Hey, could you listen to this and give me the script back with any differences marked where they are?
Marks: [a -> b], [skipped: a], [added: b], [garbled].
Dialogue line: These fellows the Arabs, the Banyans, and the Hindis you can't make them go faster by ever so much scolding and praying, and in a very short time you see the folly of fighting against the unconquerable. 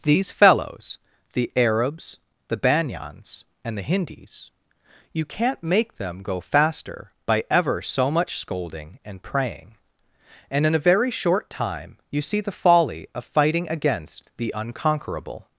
These fellows the Arabs, the Banyans, and the Hindis you can't make them go faster by ever so much scolding and praying, and in a very short time you see the folly of fighting against the unconquerable.